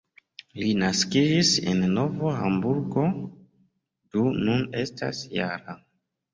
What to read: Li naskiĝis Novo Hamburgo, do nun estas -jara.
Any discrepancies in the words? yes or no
yes